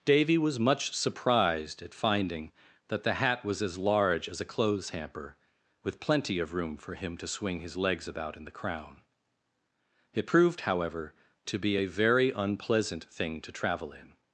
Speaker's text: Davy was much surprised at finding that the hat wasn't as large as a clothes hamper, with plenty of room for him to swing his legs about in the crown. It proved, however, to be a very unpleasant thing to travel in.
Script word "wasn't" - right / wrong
wrong